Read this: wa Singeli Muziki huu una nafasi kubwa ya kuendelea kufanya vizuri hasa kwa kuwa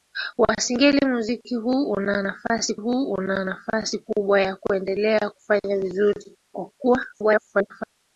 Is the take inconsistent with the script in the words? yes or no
yes